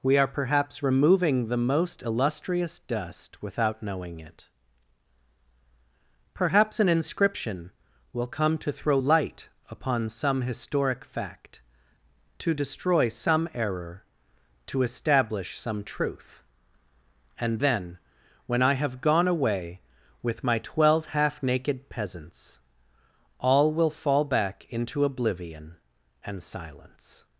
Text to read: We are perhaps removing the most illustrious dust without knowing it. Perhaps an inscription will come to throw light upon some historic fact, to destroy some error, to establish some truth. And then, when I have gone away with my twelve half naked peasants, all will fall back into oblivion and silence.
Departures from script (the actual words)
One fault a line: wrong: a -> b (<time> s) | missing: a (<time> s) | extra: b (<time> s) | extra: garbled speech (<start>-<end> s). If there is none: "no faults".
no faults